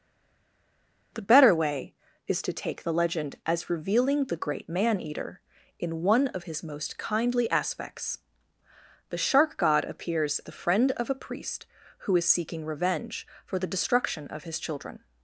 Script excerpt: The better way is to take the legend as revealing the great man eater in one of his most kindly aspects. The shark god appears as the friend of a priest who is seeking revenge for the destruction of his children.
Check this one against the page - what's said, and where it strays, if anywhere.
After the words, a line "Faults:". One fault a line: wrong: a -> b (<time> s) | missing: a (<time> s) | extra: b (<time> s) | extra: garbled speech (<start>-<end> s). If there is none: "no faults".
The better way is to take the legend as revealing the great man eater in one of his most kindly aspects. The shark god appears the friend of a priest who is seeking revenge for the destruction of his children.
Faults:
missing: as (10.4 s)